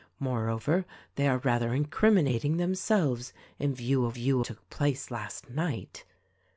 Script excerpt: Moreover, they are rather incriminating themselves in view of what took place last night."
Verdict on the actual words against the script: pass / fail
fail